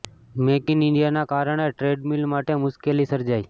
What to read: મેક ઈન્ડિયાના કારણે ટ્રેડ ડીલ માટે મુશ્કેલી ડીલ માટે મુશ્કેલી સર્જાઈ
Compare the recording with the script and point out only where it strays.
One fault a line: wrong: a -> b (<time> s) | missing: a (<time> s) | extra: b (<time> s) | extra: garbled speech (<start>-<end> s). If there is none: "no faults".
extra: ઈન (0.7 s)
missing: ડીલ માટે મુશ્કેલી (3.1 s)